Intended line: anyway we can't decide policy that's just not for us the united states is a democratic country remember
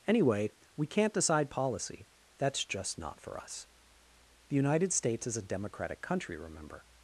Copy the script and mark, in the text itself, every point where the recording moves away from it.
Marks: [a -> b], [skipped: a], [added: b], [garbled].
anyway we can't decide policy that's just not for us the united states is a democratic country remember